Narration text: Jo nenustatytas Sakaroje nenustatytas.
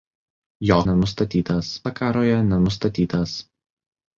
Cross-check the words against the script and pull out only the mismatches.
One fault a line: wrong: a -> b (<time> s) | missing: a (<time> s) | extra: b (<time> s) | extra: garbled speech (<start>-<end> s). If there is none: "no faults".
no faults